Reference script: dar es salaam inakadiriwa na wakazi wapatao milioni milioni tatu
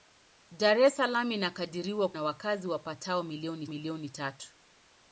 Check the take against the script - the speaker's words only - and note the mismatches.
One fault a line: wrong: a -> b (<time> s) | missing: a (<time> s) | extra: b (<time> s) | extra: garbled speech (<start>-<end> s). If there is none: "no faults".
no faults